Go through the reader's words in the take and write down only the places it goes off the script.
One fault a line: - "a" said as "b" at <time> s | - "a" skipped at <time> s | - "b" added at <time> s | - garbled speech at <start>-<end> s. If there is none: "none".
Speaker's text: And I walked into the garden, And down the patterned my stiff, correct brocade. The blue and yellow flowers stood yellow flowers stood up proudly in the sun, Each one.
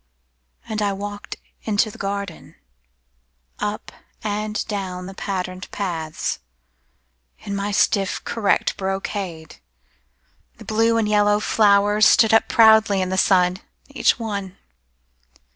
- "Up" added at 3.6 s
- "paths In" added at 5.7 s
- "yellow flowers stood" skipped at 12.3 s